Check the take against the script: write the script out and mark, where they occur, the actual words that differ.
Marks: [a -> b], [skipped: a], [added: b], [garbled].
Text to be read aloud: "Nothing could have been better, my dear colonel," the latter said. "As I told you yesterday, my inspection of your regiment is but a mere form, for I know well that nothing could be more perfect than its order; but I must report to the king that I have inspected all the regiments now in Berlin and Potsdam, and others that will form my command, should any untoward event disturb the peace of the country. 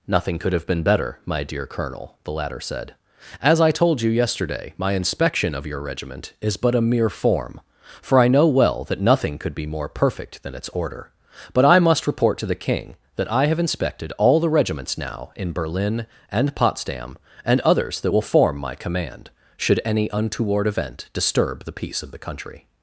"Nothing could have been better, my dear colonel," the latter said. "As I told you yesterday, my inspection of your regiment is but a mere form, for I know well that nothing could be more perfect than its order; but I must report to the king that I have inspected all the regiments now in Berlin and Potsdam, and others that will form my command, should any untoward event disturb the peace of the country.